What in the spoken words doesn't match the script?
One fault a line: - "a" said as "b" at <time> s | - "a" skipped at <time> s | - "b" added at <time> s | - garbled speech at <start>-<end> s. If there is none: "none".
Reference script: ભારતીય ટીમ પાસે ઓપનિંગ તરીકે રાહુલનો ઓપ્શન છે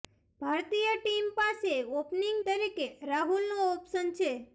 none